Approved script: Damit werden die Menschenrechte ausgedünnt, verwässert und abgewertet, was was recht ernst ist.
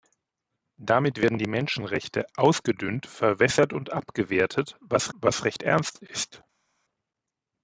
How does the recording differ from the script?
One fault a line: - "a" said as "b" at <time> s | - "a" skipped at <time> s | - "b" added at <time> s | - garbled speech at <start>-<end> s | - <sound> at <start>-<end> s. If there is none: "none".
none